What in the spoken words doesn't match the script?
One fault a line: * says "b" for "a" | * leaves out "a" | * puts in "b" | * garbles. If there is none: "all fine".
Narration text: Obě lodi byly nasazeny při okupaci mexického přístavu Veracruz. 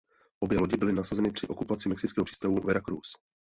all fine